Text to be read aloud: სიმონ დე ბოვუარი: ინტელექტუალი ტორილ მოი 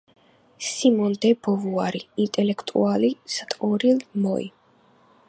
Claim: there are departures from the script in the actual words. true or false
false